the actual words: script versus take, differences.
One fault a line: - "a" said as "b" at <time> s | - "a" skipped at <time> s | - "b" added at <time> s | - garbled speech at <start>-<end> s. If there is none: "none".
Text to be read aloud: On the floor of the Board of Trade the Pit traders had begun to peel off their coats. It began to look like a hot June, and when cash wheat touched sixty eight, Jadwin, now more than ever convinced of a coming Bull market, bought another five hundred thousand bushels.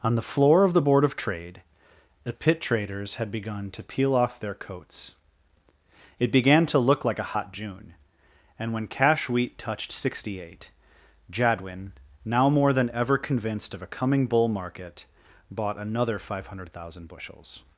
none